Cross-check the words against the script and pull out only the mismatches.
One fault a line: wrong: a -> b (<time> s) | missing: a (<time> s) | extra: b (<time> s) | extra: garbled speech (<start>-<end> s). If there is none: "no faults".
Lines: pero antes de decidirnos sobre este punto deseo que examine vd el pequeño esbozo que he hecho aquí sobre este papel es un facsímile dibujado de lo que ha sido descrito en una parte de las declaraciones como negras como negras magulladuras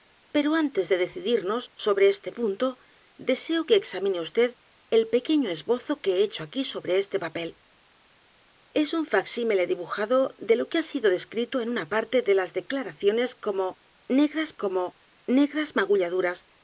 no faults